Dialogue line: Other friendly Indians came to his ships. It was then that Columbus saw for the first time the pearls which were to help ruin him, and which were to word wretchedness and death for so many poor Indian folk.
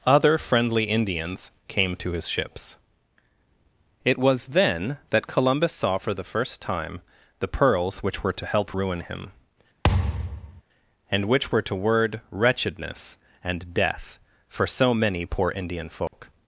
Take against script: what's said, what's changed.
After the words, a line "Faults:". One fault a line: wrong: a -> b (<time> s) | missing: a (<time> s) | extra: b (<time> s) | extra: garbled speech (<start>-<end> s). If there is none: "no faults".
Other friendly Indians came to his ships. It was then that Columbus saw for the first time the pearls which were to help ruin him, and which were to word wretchedness and death for so many poor Indian folk.
Faults:
no faults